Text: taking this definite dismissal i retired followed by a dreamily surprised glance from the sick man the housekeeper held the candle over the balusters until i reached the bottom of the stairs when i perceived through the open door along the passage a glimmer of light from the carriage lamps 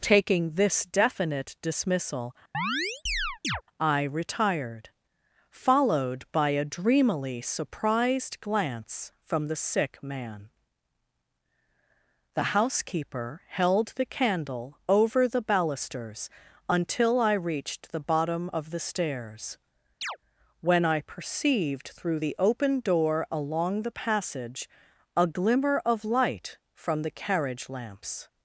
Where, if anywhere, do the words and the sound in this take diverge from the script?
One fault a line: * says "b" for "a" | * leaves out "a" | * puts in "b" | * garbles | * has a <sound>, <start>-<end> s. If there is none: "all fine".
* has a chirp, 2.5-3.6 s
* has a chirp, 20.0-20.2 s